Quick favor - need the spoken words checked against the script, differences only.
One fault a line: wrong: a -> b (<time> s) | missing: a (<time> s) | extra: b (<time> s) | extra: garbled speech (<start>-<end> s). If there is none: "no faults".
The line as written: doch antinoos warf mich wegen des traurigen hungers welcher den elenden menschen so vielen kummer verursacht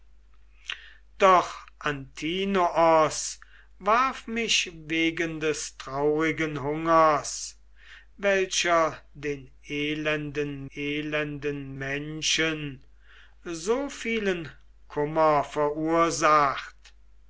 extra: elenden (10.7 s)